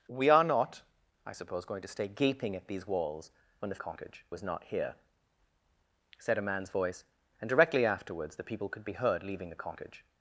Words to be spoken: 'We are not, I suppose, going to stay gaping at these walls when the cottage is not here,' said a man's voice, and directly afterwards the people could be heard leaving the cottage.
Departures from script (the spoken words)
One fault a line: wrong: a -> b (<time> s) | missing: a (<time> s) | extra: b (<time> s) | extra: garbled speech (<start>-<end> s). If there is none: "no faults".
no faults